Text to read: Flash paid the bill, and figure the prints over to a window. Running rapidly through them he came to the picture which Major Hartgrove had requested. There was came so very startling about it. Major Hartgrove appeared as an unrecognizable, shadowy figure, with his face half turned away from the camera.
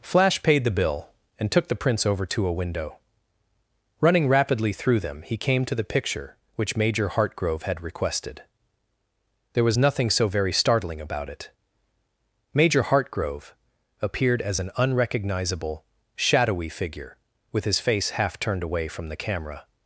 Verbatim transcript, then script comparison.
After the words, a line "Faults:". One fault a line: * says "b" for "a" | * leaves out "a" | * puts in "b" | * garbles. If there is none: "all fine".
Flash paid the bill, and took the prints over to a window. Running rapidly through them he came to the picture which Major Hartgrove had requested. There was nothing so very startling about it. Major Hartgrove appeared as an unrecognizable, shadowy figure, with his face half turned away from the camera.
Faults:
* says "took" for "figure"
* says "nothing" for "came"